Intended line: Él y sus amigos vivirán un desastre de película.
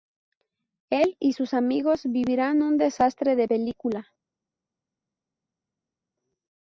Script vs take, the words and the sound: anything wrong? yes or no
no